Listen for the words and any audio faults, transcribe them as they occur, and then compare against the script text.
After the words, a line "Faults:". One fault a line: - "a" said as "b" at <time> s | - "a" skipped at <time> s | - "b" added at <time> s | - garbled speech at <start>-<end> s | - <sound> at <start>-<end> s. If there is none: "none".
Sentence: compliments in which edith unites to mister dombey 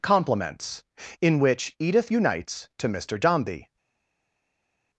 compliments in which edith unites to mister dombey
Faults:
none